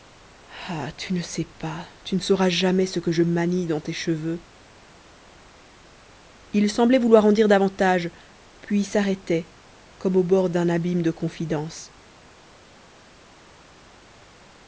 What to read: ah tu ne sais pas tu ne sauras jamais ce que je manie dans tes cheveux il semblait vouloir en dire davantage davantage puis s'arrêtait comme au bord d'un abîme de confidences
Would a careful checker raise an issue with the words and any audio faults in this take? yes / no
yes